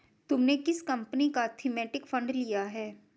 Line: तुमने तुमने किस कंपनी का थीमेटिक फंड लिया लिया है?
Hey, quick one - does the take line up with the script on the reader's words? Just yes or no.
no